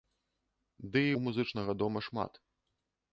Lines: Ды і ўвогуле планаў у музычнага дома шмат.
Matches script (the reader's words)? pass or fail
fail